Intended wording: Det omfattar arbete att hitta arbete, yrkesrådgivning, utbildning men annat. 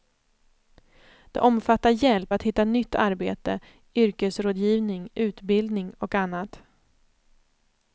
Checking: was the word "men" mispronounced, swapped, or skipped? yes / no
yes